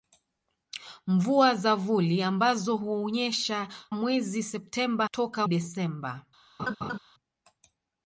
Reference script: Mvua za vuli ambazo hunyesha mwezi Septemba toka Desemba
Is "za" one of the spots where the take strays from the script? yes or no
no